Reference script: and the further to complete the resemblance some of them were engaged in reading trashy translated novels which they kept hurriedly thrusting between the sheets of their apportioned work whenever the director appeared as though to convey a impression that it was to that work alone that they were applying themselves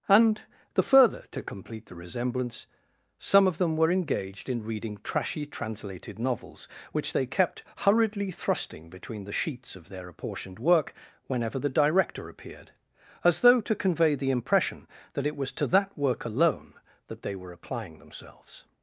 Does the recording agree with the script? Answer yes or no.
no